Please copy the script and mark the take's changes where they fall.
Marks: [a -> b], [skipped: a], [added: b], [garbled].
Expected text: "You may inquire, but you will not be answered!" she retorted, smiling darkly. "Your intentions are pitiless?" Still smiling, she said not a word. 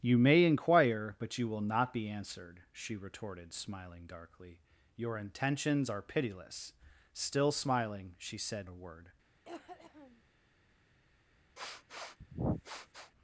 "You may inquire, but you will not be answered!" she retorted, smiling darkly. "Your intentions are pitiless?" Still smiling, she said [skipped: not] a word.